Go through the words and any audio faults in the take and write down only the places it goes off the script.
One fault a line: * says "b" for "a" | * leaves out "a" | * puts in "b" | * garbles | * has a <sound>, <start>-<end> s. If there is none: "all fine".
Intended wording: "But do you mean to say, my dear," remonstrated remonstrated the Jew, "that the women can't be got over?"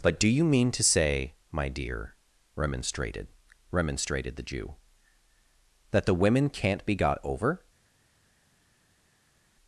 all fine